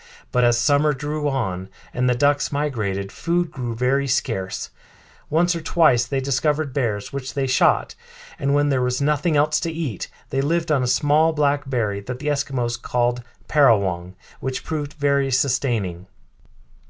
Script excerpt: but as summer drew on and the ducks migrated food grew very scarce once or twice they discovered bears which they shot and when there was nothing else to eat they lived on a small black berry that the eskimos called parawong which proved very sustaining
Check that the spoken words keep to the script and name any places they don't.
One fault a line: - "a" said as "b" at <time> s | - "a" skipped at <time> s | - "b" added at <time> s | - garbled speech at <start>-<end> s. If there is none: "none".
none